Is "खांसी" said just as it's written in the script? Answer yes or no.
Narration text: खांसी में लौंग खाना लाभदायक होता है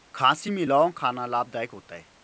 yes